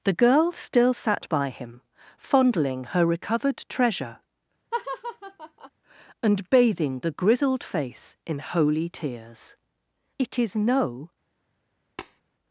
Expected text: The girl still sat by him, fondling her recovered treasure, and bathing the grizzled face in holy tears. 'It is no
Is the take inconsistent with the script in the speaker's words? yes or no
no